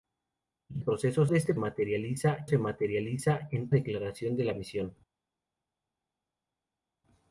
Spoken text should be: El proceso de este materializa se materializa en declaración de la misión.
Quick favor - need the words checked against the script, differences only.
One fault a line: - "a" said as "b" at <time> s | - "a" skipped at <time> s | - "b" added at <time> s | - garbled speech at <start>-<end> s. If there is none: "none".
none